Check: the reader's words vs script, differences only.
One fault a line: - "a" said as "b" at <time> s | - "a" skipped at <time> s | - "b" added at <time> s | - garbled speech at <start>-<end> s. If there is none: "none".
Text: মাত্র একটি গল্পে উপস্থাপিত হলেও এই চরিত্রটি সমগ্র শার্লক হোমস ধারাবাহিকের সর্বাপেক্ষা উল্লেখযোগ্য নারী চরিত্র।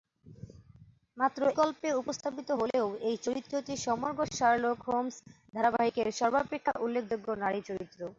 - "একটি" skipped at 1.4 s